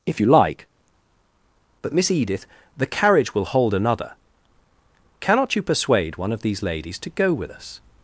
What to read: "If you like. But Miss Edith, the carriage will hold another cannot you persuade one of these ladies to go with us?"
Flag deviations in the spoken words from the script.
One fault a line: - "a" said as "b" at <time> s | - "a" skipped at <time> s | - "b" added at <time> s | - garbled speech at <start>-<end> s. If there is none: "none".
none